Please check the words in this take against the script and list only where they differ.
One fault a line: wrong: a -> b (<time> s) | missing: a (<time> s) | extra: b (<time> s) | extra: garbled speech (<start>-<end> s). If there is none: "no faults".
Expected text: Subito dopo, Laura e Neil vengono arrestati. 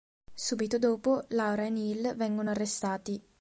no faults